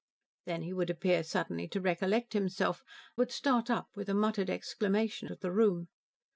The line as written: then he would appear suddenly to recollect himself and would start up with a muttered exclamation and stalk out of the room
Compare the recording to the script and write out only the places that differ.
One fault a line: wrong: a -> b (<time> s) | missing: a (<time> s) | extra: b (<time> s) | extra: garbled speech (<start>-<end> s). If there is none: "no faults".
missing: and (2.8 s)
missing: and stalk out (5.3 s)